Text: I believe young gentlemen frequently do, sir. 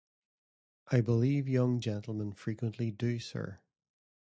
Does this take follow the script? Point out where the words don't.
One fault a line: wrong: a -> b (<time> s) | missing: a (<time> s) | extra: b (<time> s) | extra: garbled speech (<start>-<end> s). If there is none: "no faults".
no faults